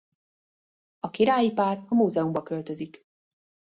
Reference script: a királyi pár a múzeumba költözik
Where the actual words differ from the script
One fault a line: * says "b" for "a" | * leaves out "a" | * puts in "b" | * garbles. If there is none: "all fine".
all fine